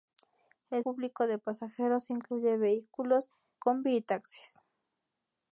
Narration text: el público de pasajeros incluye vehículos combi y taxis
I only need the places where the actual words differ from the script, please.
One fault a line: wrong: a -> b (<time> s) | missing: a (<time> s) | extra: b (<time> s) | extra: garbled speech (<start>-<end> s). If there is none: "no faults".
no faults